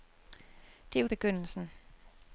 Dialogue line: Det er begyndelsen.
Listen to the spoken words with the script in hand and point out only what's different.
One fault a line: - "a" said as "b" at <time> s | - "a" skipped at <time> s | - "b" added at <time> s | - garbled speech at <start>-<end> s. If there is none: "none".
none